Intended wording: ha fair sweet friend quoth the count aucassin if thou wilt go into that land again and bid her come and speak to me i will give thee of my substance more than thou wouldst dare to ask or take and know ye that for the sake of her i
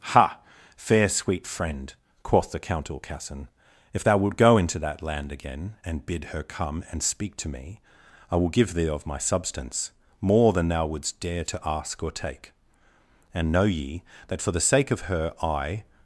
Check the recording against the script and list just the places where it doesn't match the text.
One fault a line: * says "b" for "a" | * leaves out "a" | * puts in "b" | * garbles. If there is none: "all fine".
all fine